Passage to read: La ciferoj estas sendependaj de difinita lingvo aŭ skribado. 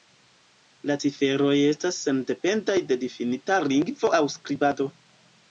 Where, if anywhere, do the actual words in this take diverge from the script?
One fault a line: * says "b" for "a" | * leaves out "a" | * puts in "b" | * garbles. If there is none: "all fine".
all fine